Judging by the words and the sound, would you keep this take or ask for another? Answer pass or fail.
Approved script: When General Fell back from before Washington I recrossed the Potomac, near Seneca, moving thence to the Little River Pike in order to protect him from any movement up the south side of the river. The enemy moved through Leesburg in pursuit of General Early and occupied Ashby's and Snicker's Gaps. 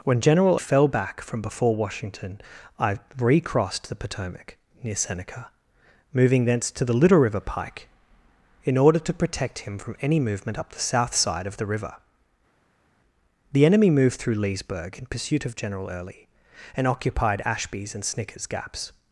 pass